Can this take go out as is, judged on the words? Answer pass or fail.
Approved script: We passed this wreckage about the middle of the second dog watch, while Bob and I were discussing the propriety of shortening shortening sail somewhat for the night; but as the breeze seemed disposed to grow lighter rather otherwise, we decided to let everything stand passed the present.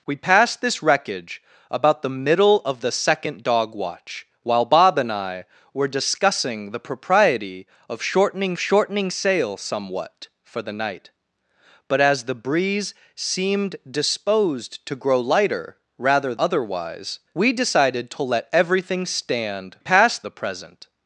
pass